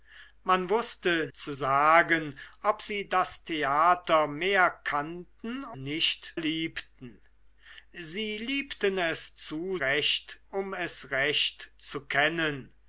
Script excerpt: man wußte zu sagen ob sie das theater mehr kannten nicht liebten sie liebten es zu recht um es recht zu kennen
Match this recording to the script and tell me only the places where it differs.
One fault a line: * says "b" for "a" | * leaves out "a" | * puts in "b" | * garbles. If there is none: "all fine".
all fine